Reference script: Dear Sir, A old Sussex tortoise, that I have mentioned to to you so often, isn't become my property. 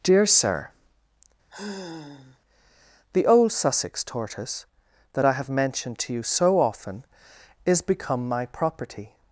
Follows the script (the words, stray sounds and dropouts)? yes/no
no